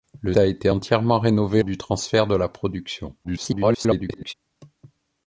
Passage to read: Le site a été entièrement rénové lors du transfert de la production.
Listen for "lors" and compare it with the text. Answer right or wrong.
wrong